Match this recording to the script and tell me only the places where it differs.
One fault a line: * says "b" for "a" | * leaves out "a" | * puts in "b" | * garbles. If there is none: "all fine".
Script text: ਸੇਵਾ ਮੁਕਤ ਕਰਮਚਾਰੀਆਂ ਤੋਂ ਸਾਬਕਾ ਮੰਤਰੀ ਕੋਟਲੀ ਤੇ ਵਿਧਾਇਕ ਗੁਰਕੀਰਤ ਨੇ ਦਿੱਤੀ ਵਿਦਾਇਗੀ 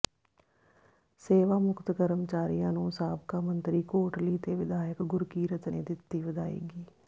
* says "ਨੂੰ" for "ਤੋਂ"